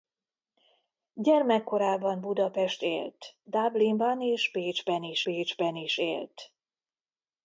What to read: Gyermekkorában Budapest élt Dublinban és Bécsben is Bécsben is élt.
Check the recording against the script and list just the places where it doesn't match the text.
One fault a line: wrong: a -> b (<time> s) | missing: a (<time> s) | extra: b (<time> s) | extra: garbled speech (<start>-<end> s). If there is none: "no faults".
no faults